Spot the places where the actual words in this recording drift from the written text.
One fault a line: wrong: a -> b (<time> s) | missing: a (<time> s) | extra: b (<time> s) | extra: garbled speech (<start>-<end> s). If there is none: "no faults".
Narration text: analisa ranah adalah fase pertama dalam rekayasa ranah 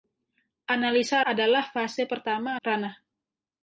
missing: ranah (1.2 s)
missing: dalam rekayasa (2.6 s)